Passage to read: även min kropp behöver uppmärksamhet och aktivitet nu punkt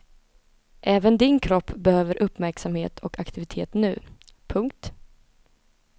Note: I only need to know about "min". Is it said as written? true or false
false